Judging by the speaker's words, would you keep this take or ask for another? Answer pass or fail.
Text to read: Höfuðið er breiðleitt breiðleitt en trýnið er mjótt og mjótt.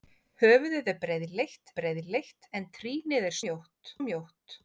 pass